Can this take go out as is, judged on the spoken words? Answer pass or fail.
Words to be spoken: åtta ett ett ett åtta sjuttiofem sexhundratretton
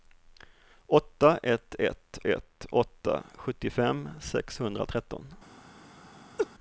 pass